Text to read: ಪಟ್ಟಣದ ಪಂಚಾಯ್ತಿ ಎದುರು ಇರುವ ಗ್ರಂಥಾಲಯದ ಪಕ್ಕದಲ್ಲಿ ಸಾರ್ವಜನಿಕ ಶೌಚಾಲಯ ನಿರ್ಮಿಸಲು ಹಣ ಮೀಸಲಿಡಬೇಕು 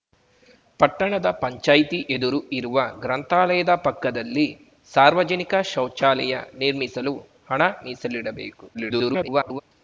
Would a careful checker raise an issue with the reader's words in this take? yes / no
yes